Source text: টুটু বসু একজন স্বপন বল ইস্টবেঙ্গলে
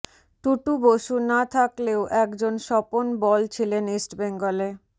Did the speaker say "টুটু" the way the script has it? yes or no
yes